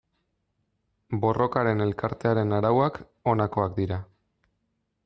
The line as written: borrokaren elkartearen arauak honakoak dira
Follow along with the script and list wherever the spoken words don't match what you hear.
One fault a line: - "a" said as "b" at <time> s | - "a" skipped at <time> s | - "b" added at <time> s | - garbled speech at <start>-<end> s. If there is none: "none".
none